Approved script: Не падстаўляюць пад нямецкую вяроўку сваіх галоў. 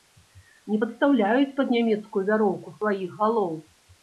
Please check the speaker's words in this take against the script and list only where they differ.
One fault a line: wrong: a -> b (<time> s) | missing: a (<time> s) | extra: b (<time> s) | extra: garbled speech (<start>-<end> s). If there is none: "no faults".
no faults